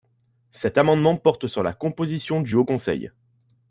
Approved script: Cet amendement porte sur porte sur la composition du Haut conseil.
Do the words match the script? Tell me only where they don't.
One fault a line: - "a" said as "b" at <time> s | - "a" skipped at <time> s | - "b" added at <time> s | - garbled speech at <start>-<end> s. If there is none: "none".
- "porte sur" skipped at 1.6 s